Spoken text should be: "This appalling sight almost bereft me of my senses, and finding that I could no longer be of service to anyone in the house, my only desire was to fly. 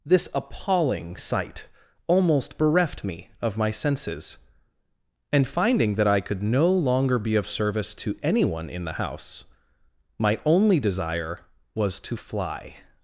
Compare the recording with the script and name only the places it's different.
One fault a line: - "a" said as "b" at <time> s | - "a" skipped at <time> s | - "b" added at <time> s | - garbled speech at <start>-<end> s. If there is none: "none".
none